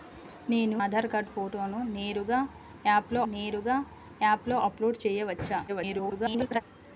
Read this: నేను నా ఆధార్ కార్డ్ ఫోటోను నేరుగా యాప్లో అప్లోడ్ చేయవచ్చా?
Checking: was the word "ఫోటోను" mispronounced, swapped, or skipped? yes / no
no